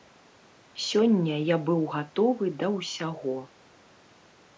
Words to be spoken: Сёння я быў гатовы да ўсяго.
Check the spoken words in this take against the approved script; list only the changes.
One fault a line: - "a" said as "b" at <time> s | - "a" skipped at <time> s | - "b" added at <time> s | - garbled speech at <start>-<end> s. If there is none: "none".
none